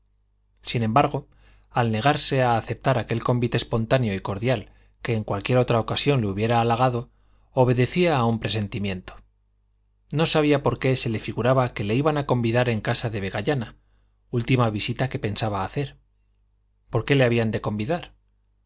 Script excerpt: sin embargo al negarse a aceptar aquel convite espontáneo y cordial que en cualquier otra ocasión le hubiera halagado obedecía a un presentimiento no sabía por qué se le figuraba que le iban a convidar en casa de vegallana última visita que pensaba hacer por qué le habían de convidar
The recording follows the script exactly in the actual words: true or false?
true